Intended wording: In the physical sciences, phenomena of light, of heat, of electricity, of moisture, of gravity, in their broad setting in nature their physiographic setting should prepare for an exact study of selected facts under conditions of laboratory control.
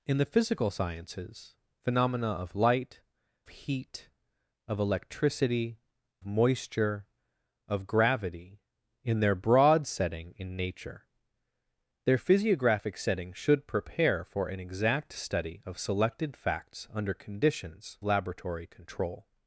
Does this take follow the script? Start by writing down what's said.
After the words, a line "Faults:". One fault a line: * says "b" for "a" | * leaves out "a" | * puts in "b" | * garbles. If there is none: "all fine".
In the physical sciences, phenomena of light, heat, of electricity, moisture, of gravity, in their broad setting in nature their physiographic setting should prepare for an exact study of selected facts under conditions laboratory control.
Faults:
* leaves out "of"
* leaves out "of"
* leaves out "of"